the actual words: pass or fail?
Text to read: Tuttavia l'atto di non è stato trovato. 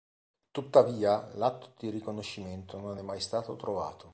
fail